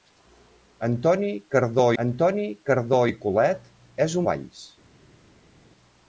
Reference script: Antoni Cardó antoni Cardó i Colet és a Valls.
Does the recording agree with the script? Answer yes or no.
yes